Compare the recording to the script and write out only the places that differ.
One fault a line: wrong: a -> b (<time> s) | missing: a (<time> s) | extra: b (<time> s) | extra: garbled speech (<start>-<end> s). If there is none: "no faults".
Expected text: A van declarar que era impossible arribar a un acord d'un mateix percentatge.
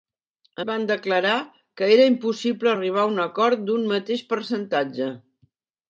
no faults